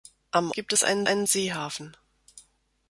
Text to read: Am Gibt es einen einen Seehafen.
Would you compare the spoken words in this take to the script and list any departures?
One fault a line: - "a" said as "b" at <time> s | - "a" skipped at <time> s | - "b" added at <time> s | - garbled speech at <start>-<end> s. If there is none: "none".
none